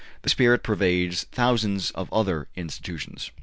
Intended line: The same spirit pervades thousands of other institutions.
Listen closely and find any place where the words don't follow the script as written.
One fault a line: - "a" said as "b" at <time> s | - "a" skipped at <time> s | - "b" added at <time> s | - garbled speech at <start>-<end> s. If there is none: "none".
- "same" skipped at 0.3 s